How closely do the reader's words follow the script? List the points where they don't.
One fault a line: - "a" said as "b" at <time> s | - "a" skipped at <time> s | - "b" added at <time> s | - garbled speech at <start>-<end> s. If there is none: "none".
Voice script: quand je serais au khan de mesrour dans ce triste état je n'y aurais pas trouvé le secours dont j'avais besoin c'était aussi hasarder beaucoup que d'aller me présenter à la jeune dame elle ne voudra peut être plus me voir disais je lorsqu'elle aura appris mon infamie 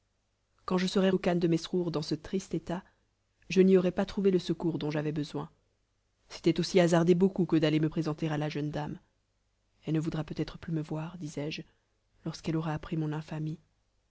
none